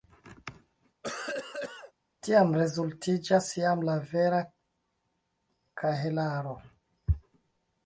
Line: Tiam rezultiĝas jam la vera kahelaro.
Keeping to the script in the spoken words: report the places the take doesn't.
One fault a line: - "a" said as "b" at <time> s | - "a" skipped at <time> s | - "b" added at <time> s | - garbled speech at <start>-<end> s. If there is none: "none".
none